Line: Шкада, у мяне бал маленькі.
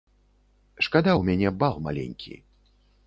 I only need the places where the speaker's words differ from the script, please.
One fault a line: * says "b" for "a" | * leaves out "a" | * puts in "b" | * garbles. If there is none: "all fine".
all fine